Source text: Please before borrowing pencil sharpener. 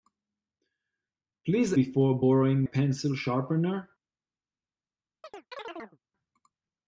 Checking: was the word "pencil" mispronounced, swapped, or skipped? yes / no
no